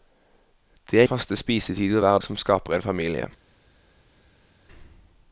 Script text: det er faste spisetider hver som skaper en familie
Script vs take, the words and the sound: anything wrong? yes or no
no